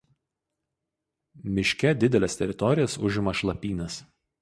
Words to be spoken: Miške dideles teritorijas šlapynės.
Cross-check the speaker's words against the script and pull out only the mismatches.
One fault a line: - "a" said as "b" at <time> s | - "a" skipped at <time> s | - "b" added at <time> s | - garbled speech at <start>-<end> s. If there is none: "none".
- "užima" added at 3.0 s